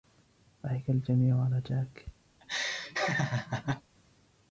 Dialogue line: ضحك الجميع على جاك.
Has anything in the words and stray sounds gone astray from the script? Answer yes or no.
yes